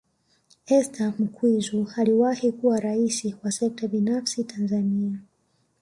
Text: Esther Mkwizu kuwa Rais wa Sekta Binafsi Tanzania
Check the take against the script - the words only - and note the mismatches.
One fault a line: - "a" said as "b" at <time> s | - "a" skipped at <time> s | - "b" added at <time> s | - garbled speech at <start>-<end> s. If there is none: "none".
- "aliwahi" added at 2.0 s